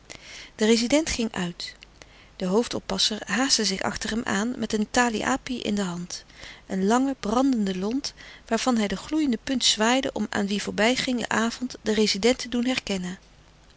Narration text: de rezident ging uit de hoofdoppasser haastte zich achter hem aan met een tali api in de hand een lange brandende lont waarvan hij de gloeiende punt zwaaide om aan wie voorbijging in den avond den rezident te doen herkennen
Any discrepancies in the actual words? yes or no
yes